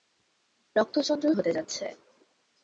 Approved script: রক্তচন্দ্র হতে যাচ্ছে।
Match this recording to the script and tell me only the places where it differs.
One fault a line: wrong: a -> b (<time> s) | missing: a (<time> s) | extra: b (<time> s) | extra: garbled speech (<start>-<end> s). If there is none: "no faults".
no faults